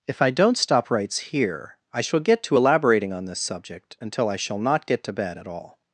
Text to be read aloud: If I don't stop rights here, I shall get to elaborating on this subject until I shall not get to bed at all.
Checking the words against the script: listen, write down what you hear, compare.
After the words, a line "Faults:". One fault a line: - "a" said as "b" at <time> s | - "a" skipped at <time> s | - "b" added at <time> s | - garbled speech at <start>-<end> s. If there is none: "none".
If I don't stop rights here, I shall get to elaborating on this subject until I shall not get to bed at all.
Faults:
none